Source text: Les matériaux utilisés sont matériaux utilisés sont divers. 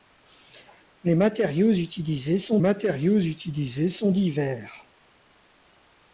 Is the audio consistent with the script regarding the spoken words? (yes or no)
yes